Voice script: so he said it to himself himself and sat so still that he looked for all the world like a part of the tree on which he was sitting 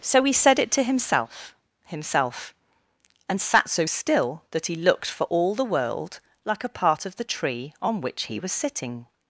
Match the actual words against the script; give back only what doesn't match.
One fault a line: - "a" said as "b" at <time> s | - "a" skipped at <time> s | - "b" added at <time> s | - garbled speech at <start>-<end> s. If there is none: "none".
none